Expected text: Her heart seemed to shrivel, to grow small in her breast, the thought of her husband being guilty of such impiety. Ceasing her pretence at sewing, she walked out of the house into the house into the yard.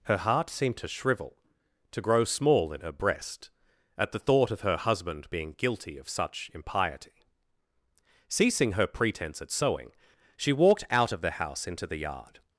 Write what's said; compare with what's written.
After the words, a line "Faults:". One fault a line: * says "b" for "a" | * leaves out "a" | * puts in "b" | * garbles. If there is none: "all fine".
Her heart seemed to shrivel, to grow small in her breast, at the thought of her husband being guilty of such impiety. Ceasing her pretence at sewing, she walked out of the house into the yard.
Faults:
* puts in "at"
* leaves out "house into the"